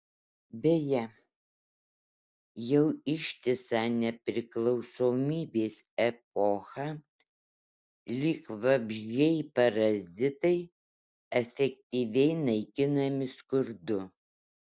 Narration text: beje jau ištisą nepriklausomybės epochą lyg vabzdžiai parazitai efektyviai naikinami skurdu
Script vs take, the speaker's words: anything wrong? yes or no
no